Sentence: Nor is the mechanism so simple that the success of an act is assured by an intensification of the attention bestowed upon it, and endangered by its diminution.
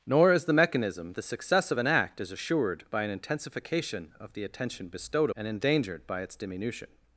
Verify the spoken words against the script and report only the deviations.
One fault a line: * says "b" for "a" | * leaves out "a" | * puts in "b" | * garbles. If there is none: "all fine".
* leaves out "so simple that"
* leaves out "upon it"